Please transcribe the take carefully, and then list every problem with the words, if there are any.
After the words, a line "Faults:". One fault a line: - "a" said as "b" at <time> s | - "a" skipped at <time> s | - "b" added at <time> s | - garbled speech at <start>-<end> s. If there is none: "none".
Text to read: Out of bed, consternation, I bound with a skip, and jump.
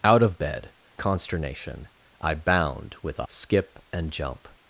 Out of bed, consternation, I bound with a skip, and jump.
Faults:
none